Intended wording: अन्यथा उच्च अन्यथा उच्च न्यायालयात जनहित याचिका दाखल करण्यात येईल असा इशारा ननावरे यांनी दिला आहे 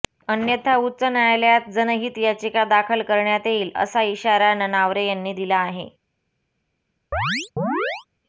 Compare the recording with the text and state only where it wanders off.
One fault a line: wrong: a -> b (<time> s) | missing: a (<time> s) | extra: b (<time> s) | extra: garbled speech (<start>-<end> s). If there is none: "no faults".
missing: अन्यथा उच्च (1.0 s)